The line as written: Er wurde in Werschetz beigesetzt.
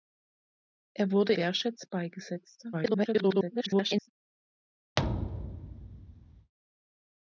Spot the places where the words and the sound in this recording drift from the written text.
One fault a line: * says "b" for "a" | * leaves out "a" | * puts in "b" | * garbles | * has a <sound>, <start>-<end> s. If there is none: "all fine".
* leaves out "in"
* garbles
* has a thud, 5.0-6.5 s